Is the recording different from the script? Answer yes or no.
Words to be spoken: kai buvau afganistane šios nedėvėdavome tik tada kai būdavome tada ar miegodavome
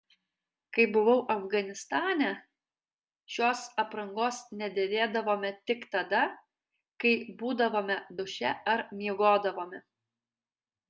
yes